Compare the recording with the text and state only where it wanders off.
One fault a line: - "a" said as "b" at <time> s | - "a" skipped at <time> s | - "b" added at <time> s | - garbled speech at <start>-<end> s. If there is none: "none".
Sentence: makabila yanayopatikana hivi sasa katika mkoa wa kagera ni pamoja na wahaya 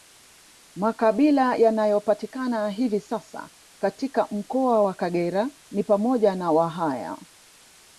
none